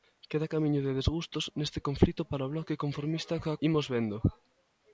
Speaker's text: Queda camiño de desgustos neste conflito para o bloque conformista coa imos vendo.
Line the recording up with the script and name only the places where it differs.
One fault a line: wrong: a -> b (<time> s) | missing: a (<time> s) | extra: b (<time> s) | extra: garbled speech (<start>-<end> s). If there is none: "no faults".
no faults